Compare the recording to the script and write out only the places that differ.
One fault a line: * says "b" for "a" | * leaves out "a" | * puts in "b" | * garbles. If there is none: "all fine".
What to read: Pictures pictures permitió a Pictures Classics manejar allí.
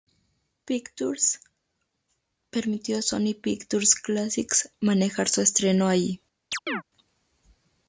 * leaves out "pictures"
* puts in "Sony"
* puts in "su estreno"